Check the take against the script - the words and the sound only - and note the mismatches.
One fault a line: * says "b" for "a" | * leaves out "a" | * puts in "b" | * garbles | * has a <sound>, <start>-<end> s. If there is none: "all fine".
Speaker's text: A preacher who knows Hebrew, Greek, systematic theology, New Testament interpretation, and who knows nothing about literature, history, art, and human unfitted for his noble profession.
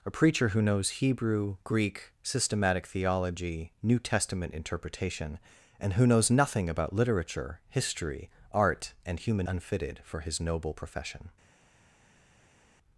all fine